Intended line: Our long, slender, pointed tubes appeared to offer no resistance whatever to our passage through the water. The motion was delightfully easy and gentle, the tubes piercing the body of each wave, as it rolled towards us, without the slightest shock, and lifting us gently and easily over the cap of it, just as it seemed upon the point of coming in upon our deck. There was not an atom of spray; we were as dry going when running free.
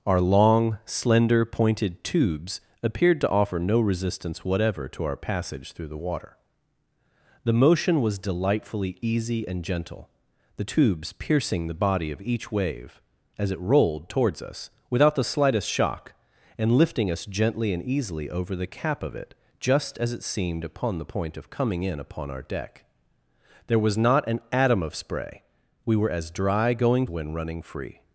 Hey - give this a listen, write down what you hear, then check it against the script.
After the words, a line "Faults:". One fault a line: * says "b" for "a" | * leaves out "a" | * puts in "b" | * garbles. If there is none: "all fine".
Our long, slender, pointed tubes appeared to offer no resistance whatever to our passage through the water. The motion was delightfully easy and gentle, the tubes piercing the body of each wave, as it rolled towards us, without the slightest shock, and lifting us gently and easily over the cap of it, just as it seemed upon the point of coming in upon our deck. There was not an atom of spray; we were as dry going when running free.
Faults:
all fine